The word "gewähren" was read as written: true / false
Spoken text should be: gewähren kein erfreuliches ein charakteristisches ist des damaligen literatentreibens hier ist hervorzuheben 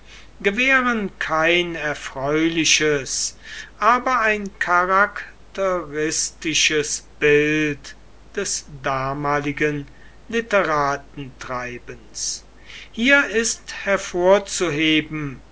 true